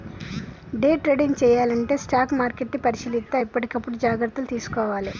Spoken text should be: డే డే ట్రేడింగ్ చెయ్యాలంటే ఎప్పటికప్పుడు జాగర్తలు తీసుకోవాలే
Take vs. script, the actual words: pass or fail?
fail